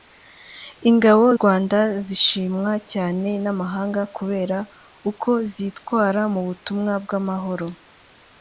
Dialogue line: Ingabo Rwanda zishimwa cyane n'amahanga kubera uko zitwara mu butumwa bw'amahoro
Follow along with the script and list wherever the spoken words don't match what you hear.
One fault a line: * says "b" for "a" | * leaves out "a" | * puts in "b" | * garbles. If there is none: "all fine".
all fine